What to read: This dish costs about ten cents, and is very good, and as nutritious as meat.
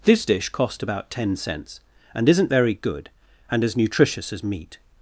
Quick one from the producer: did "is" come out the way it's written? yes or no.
no